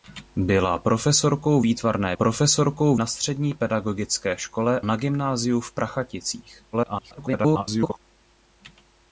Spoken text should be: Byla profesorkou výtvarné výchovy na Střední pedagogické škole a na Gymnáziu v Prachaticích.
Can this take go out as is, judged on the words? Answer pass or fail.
fail